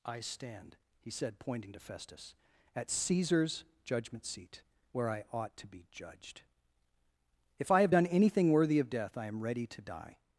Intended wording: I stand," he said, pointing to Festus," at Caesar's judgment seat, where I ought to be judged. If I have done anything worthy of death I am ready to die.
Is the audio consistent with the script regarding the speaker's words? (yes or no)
yes